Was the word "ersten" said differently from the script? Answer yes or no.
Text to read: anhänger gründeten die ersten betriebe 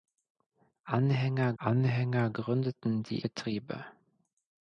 yes